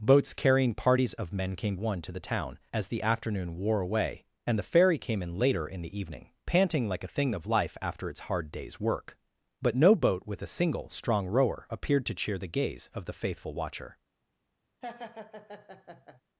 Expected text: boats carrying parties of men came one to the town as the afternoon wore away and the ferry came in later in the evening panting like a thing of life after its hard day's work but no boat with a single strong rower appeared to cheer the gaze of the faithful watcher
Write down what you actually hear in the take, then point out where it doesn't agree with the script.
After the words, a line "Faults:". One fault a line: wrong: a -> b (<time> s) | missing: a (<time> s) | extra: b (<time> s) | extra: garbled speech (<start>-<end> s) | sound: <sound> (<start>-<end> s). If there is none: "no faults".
boats carrying parties of men came one to the town as the afternoon wore away and the ferry came in later in the evening panting like a thing of life after its hard day's work but no boat with a single strong rower appeared to cheer the gaze of the faithful watcher
Faults:
sound: laugh (14.8-16.2 s)